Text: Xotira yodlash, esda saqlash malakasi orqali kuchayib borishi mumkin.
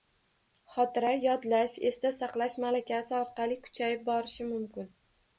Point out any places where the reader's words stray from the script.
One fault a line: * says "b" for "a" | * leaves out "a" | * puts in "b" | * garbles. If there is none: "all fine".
all fine